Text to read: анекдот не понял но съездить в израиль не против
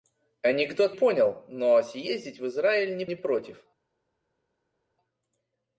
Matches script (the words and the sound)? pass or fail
fail